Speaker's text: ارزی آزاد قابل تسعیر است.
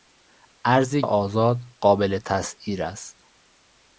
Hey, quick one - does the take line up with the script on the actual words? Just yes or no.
yes